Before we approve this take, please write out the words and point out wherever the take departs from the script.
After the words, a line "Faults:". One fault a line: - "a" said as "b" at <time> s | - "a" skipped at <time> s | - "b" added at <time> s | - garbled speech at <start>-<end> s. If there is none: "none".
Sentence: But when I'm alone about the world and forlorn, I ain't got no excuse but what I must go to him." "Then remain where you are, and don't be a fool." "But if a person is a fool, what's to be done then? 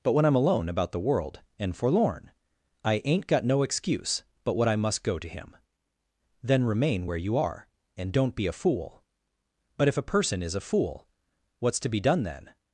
But when I'm alone about the world and forlorn, I ain't got no excuse but what I must go to him." "Then remain where you are, and don't be a fool." "But if a person is a fool, what's to be done then?
Faults:
none